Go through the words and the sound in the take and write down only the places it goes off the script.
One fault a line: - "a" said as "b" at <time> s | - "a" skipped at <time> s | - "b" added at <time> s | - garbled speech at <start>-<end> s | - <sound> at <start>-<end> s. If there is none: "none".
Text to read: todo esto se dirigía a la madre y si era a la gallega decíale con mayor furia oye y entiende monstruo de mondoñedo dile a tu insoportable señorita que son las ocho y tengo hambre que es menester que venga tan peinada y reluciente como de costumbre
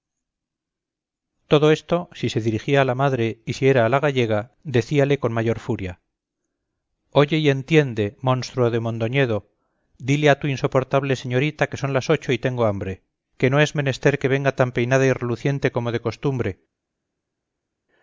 - "si" added at 2.1 s
- "no" added at 13.5 s